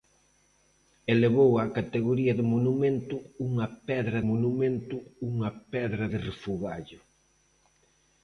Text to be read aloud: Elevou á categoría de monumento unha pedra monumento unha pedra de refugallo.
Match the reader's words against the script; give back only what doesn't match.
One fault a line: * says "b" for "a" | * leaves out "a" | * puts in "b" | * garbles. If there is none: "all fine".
all fine